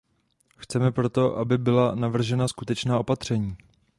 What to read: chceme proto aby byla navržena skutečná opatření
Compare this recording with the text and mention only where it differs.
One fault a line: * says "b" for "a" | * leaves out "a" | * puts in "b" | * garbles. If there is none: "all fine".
all fine